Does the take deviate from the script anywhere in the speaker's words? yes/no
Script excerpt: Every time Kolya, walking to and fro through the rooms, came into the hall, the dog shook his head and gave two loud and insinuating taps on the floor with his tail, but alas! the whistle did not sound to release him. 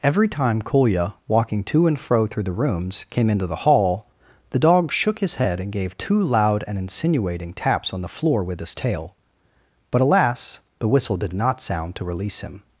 no